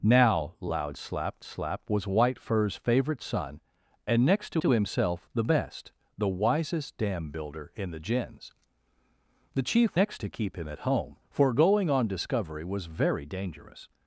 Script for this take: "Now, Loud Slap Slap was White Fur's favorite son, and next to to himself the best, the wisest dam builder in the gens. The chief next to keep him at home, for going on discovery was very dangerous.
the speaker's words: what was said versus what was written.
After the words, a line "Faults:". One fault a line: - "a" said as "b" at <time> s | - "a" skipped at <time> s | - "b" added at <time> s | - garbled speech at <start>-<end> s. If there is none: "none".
"Now, Loud Slap Slap was White Fur's favorite son, and next to to himself the best, the wisest dam builder in the gens. The chief next to keep him at home, for going on discovery was very dangerous.
Faults:
none